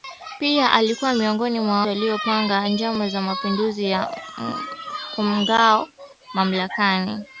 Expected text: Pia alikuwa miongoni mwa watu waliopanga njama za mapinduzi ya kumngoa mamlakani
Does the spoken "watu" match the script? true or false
false